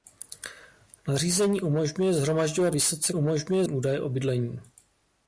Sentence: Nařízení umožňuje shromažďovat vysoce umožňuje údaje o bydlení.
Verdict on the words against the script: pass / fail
pass